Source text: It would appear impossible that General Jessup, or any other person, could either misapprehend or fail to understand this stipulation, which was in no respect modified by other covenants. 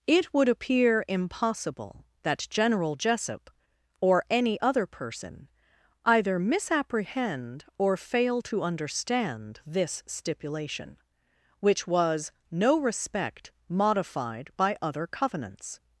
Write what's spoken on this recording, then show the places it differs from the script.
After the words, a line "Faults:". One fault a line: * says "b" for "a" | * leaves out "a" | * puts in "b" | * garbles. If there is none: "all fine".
It would appear impossible that General Jessup, or any other person, either misapprehend or fail to understand this stipulation, which was no respect modified by other covenants.
Faults:
* leaves out "could"
* leaves out "in"